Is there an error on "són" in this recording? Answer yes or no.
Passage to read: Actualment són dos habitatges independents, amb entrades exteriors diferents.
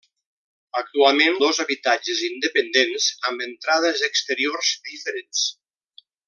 yes